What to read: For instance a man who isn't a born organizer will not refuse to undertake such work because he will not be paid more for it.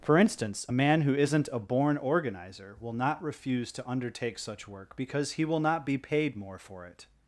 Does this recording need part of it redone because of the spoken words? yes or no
no